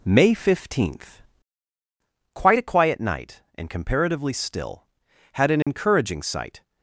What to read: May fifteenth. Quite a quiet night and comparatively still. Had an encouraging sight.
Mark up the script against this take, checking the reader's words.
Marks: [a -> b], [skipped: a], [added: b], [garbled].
May fifteenth. Quite a quiet night and comparatively still. Had an encouraging sight.